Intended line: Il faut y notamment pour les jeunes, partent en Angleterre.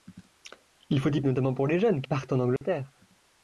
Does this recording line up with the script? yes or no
yes